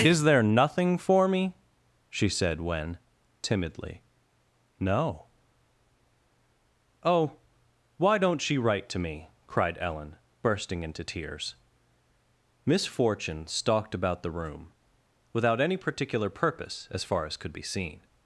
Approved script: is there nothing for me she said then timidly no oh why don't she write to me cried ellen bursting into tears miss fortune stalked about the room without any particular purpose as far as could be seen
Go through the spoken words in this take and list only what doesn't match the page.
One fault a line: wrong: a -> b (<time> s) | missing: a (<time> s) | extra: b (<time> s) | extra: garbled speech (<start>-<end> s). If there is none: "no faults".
wrong: then -> when (2.6 s)